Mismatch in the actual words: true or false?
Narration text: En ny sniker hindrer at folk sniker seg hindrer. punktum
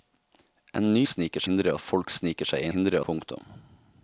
false